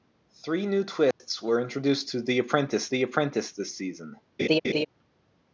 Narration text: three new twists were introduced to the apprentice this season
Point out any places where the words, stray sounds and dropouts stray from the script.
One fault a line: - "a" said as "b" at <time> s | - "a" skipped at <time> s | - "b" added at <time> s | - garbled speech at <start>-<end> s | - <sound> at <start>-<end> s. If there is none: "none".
- dropout at 1.1-1.2 s
- "the apprentice" added at 2.9 s
- laugh at 4.4-4.9 s